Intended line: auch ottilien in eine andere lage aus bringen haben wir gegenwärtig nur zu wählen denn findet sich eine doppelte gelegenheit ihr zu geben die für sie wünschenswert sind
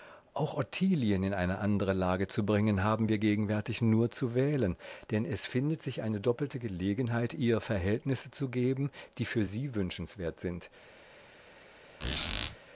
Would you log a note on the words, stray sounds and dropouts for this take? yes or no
yes